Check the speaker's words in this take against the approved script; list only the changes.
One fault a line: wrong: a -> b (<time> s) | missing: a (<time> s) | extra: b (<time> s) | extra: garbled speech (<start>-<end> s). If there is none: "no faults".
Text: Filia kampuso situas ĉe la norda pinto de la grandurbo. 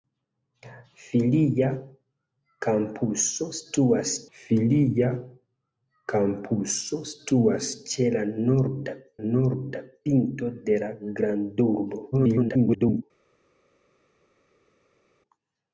extra: filia kampuso situas (4.4 s)
extra: norda (9.2 s)
extra: garbled speech (12.1-13.0 s)